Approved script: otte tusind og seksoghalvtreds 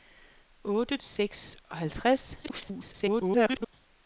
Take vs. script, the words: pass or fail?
fail